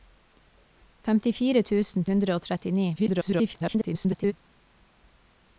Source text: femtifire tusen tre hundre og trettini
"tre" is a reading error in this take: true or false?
true